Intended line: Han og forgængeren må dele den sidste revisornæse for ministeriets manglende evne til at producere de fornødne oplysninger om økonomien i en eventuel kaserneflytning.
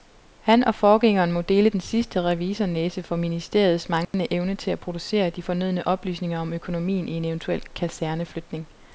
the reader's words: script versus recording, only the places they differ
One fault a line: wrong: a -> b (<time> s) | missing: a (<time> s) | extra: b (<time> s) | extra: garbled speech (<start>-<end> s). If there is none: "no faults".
no faults